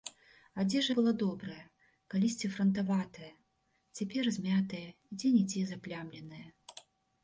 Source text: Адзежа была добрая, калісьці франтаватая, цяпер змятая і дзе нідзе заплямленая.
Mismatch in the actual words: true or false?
false